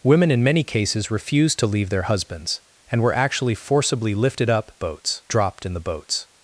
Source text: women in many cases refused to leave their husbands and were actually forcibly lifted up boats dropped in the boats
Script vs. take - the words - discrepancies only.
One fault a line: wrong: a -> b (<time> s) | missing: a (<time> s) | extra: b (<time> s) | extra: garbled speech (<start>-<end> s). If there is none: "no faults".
no faults